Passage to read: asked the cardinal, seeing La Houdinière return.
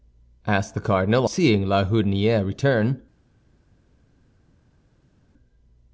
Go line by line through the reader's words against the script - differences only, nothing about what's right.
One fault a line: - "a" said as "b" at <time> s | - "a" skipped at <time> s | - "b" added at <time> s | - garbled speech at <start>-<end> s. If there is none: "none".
none